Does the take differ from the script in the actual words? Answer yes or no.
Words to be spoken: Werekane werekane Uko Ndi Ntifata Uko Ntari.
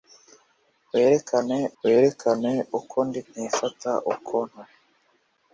no